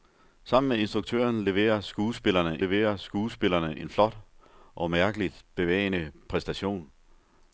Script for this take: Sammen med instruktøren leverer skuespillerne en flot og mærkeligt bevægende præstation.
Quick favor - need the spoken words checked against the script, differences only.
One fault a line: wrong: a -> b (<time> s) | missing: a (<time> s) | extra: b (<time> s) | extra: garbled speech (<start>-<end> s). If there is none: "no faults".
extra: leverer skuespillerne (2.6 s)